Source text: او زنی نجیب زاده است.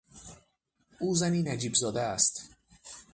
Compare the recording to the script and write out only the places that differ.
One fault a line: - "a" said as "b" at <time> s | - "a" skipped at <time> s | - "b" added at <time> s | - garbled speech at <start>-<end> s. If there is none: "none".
none